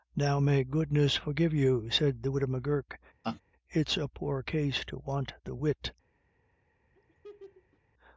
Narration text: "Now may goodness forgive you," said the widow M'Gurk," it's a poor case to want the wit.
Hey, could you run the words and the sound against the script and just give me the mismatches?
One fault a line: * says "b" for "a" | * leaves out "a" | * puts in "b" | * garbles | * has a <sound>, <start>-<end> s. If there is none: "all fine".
* has a laugh, 3.2-3.4 s
* has a laugh, 6.9-7.8 s